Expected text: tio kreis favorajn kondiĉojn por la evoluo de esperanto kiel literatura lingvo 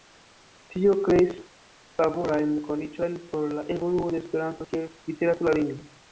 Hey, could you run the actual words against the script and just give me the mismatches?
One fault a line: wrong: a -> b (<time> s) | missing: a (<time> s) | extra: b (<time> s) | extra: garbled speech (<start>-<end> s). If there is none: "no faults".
no faults